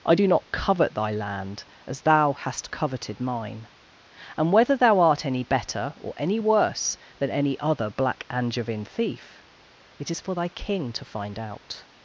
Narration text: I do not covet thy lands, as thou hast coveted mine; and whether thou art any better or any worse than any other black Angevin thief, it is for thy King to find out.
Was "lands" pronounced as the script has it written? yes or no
no